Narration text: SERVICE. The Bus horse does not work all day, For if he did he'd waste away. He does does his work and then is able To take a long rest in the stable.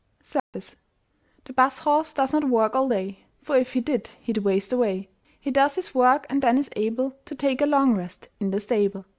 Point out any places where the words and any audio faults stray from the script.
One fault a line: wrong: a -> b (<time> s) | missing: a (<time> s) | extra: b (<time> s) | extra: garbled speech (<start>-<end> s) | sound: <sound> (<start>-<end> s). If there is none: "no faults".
sound: dropout (0.4-0.5 s)
missing: does (5.8 s)